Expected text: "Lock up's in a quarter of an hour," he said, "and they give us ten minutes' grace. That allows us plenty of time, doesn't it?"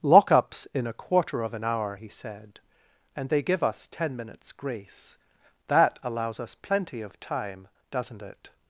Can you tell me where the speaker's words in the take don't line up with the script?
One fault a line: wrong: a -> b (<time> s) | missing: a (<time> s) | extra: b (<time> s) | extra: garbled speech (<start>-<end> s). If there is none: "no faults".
no faults